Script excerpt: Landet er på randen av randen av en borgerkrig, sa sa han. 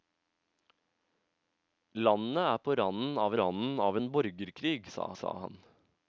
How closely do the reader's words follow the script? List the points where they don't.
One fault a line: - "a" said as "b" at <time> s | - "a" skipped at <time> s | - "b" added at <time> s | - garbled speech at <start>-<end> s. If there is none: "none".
none